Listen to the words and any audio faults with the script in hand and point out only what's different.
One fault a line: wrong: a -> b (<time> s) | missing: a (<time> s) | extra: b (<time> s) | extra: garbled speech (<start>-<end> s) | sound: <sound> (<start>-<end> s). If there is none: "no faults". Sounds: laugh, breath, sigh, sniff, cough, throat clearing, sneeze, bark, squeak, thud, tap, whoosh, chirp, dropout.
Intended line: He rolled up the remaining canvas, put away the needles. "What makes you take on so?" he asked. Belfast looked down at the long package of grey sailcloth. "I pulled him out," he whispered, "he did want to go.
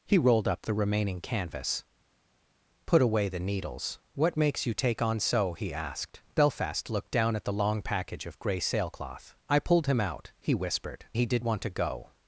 no faults